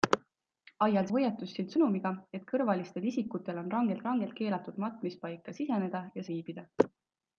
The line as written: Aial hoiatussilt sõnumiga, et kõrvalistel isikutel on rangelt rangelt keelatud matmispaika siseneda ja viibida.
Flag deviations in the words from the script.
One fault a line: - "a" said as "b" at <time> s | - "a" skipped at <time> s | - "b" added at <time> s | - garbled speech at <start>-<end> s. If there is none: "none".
none